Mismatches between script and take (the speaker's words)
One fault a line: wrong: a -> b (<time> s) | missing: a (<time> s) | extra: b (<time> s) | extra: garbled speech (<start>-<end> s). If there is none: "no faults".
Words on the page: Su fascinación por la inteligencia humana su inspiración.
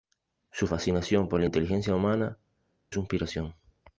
no faults